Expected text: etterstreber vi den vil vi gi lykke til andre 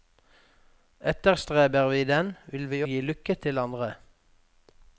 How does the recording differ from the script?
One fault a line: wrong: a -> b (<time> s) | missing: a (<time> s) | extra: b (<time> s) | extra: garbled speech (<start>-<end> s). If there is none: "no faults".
no faults